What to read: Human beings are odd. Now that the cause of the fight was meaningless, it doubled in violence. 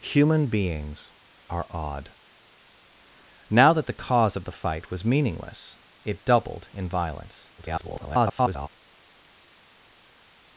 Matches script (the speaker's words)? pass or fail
fail